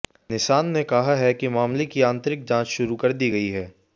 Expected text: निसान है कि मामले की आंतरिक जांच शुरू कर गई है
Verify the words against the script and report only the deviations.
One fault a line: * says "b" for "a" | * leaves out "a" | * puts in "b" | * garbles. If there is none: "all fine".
* puts in "ने कहा"
* puts in "दी"